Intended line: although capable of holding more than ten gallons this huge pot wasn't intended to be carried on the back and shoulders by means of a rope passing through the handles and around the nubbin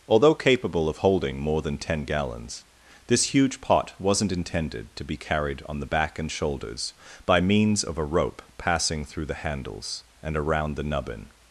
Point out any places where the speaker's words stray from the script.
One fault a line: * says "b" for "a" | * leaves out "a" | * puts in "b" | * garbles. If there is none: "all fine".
all fine